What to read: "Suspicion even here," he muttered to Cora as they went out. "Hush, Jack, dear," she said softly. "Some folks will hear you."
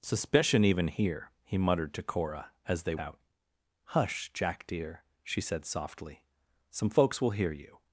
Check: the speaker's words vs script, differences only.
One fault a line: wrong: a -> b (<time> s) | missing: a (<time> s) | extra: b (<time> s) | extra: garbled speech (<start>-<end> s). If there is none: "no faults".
missing: went (3.0 s)